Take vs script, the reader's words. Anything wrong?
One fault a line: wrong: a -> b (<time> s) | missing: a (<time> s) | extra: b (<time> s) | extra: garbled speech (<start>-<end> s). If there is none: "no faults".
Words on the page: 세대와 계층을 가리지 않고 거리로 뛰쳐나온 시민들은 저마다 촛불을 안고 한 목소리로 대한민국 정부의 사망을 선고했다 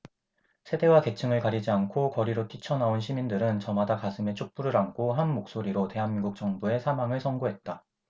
extra: 가슴에 (4.0 s)